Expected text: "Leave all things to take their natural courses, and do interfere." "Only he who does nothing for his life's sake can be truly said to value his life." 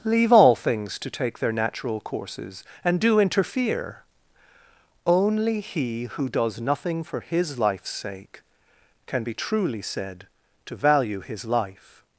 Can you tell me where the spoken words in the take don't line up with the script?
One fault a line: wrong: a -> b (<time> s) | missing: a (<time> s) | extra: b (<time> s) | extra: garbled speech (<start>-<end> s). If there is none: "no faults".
no faults